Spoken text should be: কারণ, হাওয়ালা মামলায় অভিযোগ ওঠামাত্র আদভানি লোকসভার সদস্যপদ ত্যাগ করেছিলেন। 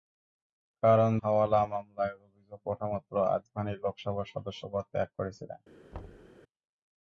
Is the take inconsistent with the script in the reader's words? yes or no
no